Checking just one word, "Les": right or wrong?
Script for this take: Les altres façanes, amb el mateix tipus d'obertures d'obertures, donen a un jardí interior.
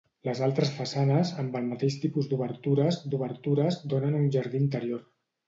right